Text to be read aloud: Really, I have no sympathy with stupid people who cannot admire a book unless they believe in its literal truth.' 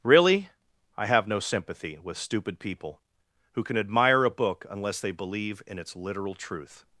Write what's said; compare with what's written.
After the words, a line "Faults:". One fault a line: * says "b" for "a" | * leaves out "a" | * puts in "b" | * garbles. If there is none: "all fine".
Really, I have no sympathy with stupid people who can admire a book unless they believe in its literal truth.'
Faults:
* says "can" for "cannot"